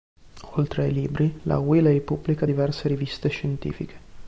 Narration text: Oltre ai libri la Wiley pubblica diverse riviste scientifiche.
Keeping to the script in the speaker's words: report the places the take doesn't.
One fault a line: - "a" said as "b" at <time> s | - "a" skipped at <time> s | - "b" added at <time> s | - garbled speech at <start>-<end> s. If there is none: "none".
none